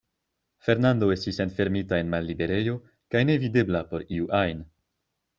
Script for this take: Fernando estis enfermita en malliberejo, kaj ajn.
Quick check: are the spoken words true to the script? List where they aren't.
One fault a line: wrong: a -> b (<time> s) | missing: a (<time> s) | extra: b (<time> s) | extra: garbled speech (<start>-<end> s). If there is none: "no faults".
extra: nevidebla por iu (3.3 s)